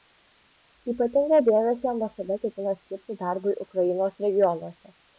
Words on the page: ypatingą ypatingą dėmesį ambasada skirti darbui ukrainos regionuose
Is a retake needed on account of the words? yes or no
yes